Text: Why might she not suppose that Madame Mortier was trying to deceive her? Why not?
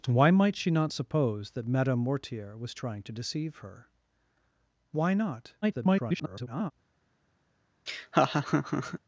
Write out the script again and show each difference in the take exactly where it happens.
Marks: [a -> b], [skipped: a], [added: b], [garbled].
Why might she not suppose that Madame Mortier was trying to deceive her? Why not? [garbled]